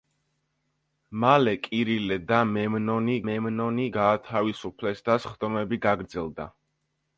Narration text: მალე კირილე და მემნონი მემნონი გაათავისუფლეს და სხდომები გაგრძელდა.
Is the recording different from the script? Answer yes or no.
no